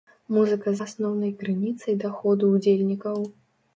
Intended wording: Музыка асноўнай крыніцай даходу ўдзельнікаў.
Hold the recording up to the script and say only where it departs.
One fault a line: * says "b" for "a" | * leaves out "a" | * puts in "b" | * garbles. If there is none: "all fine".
all fine